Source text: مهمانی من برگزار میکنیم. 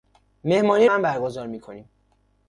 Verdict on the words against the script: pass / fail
pass